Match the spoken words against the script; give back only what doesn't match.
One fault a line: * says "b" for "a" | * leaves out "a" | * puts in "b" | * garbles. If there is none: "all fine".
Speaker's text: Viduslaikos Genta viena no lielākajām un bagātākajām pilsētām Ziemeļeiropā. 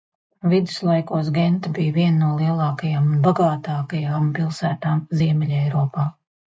* puts in "bija"